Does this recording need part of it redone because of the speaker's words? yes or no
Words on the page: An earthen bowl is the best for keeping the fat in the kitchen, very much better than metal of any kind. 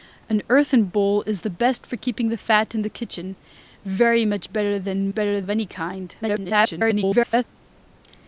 yes